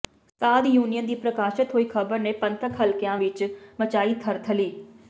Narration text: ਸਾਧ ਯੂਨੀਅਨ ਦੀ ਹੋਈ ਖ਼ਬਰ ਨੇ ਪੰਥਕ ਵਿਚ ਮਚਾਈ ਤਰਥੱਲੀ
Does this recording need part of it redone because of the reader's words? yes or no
yes